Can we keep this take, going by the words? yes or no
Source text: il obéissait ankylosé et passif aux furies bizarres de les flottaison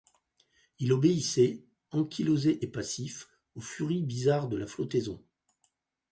no